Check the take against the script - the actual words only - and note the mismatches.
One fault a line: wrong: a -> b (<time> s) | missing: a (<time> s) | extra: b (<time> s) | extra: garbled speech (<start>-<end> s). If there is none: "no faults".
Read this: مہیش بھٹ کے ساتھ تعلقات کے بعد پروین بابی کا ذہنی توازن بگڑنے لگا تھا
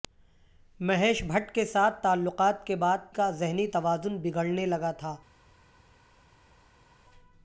missing: پروین بابی (3.1 s)